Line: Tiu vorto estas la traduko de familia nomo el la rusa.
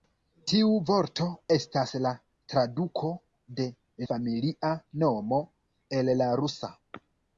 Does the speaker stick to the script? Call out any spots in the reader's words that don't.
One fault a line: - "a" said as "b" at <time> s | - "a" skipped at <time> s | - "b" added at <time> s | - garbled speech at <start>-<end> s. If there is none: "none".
none